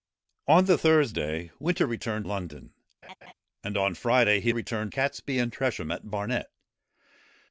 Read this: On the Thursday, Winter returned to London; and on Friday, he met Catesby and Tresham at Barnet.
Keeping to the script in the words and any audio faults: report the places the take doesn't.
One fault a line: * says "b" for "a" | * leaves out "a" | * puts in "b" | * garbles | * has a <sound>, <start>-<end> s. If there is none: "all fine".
* leaves out "to"
* has a laugh, 3.0-3.3 s
* says "returned" for "met"